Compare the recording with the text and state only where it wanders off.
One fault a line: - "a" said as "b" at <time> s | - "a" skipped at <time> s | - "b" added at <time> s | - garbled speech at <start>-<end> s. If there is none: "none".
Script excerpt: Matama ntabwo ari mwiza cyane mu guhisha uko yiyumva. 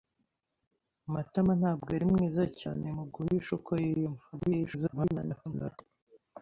- garbled speech at 4.3-5.8 s